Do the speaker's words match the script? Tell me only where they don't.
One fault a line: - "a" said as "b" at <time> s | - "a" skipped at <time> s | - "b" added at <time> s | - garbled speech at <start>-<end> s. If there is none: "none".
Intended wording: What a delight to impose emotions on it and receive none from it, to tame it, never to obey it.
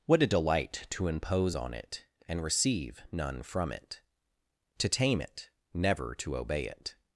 - "emotions" skipped at 1.6 s